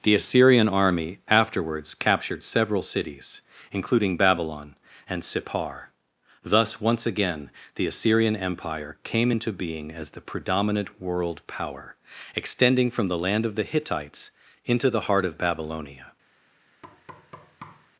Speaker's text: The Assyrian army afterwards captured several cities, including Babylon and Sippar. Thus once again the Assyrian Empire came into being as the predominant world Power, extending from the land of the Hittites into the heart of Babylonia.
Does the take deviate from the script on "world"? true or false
false